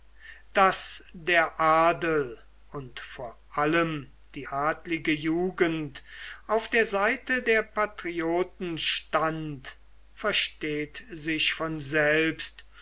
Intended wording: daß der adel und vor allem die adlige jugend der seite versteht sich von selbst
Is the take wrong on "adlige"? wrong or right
right